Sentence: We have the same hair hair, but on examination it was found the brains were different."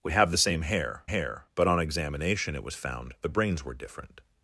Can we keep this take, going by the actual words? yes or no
yes